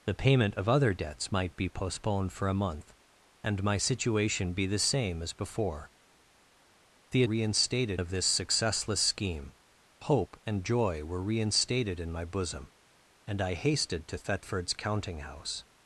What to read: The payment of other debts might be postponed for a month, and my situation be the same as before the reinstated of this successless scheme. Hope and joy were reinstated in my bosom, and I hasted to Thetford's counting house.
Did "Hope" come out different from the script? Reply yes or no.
no